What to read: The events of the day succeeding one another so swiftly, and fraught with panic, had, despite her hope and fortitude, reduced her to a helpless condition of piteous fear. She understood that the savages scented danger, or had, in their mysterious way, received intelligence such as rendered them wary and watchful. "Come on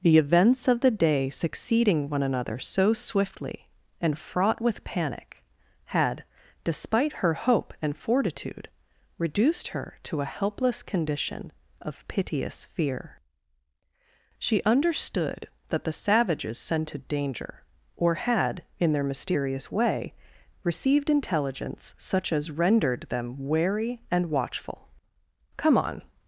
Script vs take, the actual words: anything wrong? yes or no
no